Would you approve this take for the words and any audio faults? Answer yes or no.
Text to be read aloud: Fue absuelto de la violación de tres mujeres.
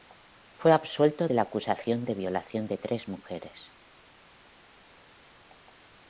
no